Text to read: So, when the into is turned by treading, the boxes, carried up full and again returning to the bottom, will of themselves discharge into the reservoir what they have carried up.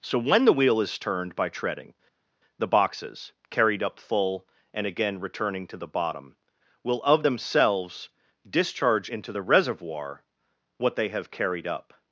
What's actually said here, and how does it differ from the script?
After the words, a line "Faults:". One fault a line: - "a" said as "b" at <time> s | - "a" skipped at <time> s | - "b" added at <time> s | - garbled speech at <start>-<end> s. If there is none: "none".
So, when the wheel is turned by treading, the boxes, carried up full and again returning to the bottom, will of themselves discharge into the reservoir what they have carried up.
Faults:
- "into" said as "wheel" at 0.5 s